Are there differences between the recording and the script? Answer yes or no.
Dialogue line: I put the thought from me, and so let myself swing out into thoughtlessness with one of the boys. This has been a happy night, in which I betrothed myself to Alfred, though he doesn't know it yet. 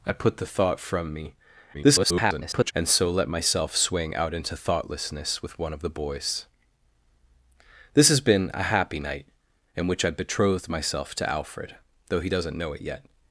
yes